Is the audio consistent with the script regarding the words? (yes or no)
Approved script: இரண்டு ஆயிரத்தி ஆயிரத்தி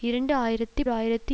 yes